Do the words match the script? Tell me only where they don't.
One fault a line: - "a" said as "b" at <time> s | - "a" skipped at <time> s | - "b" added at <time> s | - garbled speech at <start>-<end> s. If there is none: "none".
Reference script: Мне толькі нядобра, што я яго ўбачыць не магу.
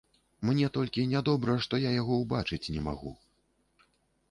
none